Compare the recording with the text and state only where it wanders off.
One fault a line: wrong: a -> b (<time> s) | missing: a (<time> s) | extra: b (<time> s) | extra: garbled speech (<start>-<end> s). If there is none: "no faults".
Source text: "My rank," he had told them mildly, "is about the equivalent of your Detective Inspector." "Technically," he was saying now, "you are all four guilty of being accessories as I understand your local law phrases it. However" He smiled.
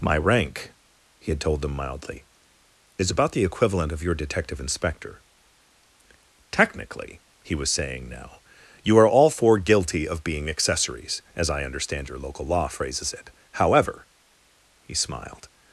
no faults